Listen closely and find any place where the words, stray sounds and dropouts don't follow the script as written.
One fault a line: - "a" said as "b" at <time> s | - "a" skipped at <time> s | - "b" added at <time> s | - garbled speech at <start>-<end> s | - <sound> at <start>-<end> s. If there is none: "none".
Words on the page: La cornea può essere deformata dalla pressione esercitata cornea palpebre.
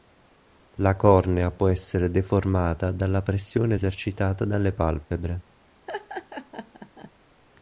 - "cornea" said as "dalle" at 4.5 s
- laugh at 5.9-7.1 s